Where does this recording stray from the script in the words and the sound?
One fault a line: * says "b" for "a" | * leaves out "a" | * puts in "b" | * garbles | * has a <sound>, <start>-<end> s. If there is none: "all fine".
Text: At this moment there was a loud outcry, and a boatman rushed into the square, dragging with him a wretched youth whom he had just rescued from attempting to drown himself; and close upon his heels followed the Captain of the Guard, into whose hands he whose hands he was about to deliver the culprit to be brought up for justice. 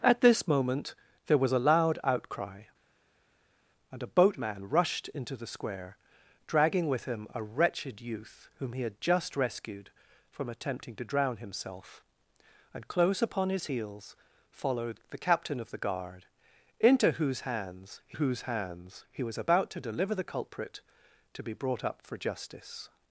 all fine